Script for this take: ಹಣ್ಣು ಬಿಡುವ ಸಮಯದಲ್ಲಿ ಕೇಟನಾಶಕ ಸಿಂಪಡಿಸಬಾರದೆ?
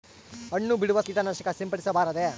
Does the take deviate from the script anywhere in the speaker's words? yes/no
yes